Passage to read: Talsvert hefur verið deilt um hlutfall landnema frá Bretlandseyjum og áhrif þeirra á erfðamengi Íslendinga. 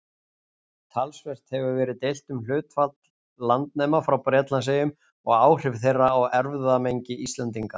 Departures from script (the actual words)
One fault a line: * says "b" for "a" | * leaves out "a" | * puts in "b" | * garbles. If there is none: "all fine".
all fine